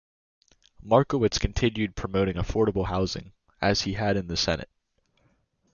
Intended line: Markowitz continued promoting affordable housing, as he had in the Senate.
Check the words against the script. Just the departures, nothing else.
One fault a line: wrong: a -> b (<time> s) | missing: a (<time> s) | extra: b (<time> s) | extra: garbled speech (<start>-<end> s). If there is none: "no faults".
no faults